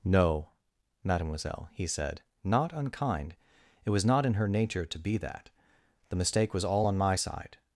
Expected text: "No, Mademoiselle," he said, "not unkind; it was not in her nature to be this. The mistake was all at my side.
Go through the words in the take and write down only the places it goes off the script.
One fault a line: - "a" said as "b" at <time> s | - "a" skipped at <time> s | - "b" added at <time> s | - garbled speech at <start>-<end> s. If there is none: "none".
- "this" said as "that" at 5.2 s
- "at" said as "on" at 6.8 s